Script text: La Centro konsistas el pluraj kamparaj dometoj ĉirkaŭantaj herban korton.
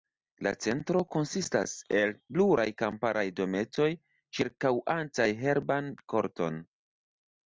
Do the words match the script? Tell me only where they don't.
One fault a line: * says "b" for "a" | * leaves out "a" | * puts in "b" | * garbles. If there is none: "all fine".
all fine